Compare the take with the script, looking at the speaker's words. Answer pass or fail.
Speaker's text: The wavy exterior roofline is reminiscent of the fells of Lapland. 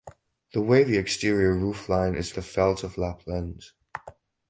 fail